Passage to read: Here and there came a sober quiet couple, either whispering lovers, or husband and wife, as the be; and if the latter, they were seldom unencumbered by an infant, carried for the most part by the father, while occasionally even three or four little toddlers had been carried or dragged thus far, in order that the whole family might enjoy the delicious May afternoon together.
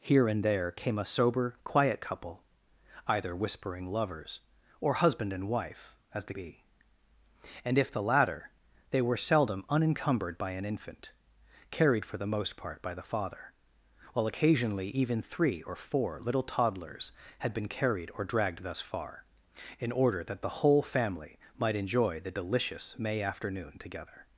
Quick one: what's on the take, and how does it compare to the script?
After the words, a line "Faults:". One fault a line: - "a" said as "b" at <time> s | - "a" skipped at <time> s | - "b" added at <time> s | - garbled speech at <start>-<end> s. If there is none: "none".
Here and there came a sober quiet couple, either whispering lovers, or husband and wife, as the be; and if the latter, they were seldom unencumbered by an infant, carried for the most part by the father, while occasionally even three or four little toddlers had been carried or dragged thus far, in order that the whole family might enjoy the delicious May afternoon together.
Faults:
none